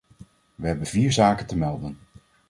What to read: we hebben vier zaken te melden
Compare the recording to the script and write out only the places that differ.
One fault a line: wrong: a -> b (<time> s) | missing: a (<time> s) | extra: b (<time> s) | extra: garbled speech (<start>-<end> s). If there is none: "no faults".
no faults